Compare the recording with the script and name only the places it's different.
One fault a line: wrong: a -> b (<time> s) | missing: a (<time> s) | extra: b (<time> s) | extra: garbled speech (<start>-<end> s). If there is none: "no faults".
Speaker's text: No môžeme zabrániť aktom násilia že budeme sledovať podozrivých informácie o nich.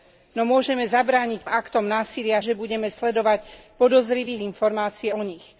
no faults